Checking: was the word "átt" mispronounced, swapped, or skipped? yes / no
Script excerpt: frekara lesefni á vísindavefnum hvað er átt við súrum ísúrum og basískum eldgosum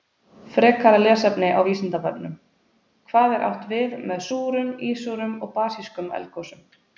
no